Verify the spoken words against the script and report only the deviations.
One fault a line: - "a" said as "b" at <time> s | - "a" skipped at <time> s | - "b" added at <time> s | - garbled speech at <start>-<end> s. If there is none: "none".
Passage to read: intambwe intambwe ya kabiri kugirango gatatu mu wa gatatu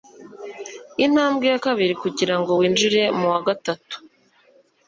- "intambwe" skipped at 1.4 s
- "gatatu" said as "winjire" at 2.6 s